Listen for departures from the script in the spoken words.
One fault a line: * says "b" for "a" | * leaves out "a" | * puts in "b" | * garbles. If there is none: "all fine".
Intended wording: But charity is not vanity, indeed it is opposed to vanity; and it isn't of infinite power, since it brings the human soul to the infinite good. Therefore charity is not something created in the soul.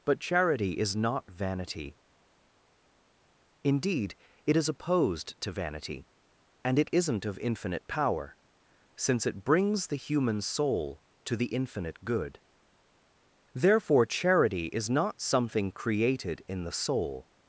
all fine